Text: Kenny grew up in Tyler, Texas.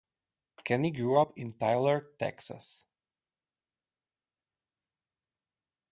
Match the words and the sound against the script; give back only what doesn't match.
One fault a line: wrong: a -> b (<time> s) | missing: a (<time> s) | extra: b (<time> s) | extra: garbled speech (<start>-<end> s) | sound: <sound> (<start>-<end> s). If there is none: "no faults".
no faults